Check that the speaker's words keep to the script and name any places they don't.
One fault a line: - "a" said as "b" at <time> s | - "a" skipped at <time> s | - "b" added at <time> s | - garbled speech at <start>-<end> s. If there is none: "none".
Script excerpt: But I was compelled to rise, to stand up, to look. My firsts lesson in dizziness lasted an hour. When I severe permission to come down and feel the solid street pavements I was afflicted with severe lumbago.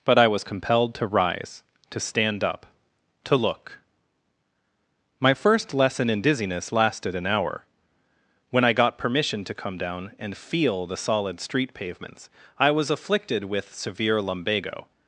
- "firsts" said as "first" at 5.3 s
- "severe" said as "got" at 8.7 s